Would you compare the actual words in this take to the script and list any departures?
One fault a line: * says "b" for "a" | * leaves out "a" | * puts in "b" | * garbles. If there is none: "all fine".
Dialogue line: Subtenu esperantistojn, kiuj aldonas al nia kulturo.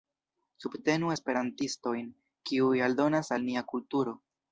all fine